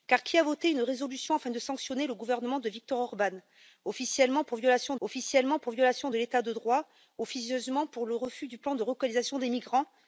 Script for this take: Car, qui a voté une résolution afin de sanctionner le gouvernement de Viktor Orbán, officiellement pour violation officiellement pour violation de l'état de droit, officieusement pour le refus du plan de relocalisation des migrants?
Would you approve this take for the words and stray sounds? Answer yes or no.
yes